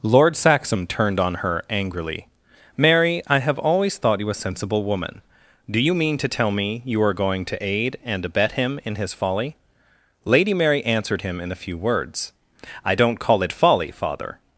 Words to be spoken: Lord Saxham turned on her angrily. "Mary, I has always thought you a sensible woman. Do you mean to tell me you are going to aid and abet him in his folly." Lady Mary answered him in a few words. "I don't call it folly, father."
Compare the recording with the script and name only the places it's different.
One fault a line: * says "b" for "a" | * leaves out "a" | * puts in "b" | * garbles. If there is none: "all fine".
* says "have" for "has"